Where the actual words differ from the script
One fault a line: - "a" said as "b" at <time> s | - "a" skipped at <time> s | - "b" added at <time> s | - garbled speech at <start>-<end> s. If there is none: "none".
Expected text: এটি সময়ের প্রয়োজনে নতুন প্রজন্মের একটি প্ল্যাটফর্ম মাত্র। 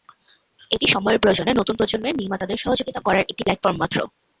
- "নির্মাতাদের সহযোগিতা করার" added at 2.2 s